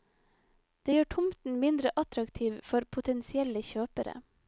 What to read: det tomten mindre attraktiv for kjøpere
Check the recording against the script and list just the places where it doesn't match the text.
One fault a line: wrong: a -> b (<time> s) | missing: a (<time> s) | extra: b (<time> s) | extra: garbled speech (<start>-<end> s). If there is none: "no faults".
extra: gjør (0.9 s)
extra: potensielle (3.0 s)